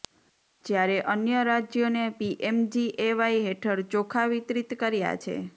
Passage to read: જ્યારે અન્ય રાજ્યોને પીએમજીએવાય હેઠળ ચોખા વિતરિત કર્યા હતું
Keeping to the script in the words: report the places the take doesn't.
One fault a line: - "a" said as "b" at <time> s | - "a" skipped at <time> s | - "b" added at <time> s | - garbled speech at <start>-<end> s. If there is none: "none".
- "હતું" said as "છે" at 5.2 s